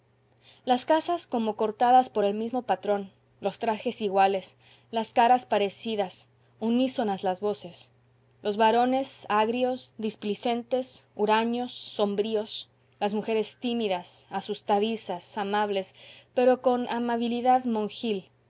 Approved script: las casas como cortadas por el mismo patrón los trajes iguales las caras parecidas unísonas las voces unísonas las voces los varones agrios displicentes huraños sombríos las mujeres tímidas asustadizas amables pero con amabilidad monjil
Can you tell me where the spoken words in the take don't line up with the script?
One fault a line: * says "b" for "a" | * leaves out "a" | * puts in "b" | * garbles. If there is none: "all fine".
* leaves out "unísonas las voces"